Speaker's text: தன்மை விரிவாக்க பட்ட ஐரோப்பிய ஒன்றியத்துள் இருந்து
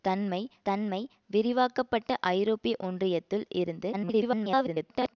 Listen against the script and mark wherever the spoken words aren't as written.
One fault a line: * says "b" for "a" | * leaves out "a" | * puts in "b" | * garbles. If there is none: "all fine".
* puts in "தன்மை"
* garbles